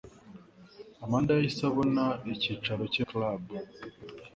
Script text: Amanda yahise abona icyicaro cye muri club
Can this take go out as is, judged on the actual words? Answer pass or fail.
fail